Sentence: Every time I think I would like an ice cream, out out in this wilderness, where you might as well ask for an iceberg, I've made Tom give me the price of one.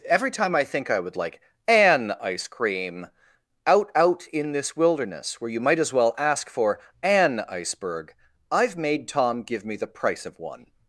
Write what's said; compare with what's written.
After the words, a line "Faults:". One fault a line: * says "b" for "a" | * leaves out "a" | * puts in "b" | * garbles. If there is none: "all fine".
Every time I think I would like an ice cream, out out in this wilderness, where you might as well ask for an iceberg, I've made Tom give me the price of one.
Faults:
all fine